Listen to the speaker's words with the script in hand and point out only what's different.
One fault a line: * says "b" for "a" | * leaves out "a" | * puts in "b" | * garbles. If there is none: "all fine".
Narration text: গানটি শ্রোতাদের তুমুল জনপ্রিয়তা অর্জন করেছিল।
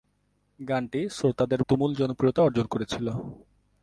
all fine